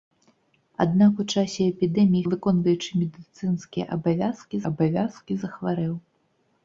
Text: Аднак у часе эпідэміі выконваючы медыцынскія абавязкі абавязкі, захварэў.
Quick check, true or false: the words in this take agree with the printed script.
true